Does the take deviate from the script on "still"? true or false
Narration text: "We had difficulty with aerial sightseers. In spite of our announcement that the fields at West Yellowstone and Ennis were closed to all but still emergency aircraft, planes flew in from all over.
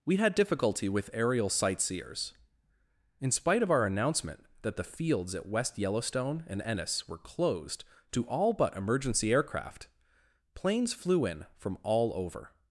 true